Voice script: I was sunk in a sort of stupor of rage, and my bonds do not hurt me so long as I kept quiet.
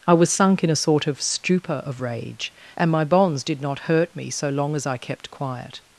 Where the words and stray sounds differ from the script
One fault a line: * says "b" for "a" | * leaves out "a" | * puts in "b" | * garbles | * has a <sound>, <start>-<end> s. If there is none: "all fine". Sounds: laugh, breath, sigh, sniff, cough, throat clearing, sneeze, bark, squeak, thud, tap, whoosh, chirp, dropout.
* says "did" for "do"